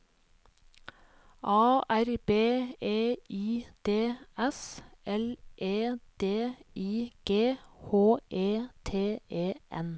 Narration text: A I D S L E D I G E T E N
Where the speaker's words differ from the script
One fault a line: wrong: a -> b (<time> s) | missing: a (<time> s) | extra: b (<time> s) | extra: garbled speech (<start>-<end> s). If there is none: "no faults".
extra: R B E (1.9 s)
extra: H (7.6 s)